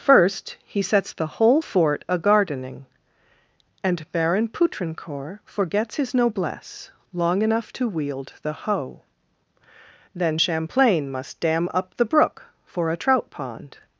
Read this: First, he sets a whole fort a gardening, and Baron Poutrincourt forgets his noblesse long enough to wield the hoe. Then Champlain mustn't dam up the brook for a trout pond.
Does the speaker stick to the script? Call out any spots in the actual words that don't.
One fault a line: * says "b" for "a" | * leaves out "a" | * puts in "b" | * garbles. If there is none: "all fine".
* says "the" for "a"
* says "must" for "mustn't"